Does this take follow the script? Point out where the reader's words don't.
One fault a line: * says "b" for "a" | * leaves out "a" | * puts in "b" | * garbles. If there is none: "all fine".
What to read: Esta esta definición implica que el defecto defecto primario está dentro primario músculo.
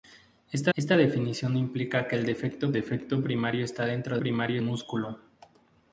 all fine